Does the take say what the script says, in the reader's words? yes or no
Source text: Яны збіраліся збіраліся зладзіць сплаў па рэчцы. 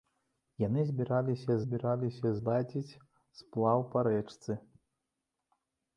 yes